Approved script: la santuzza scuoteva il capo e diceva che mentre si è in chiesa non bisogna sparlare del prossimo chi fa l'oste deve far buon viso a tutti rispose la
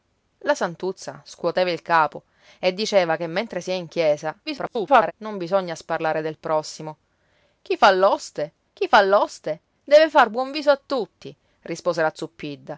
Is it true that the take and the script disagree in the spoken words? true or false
true